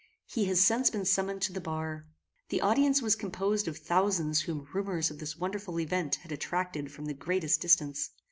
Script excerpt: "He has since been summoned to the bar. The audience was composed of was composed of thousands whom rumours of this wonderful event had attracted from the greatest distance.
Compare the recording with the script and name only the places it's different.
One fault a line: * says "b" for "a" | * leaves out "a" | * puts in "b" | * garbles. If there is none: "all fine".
* leaves out "was composed of"